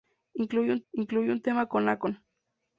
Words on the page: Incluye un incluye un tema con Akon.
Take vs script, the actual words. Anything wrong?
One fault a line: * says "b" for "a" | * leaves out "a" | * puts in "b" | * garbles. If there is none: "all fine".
all fine